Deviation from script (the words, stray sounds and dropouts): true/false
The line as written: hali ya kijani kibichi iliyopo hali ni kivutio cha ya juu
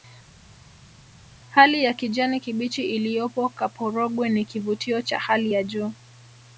true